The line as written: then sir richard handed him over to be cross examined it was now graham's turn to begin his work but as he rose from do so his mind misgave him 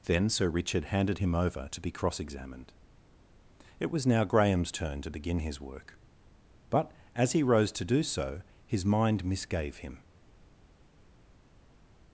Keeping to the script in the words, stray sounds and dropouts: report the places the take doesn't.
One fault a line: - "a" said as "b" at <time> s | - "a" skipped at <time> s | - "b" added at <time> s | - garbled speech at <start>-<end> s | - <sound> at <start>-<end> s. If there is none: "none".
- "from" said as "to" at 7.7 s